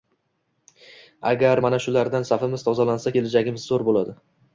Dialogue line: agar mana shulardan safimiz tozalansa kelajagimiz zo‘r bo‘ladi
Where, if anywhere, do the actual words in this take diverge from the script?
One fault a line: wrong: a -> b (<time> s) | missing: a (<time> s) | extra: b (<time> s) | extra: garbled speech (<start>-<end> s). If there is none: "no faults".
no faults